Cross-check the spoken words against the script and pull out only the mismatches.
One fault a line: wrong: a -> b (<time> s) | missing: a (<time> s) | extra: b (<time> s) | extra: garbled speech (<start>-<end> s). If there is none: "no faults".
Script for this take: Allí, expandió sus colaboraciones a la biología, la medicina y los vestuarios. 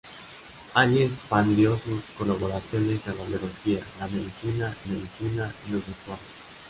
extra: medicina (4.8 s)